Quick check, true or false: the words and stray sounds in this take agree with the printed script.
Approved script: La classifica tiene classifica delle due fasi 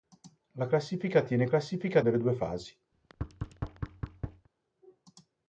false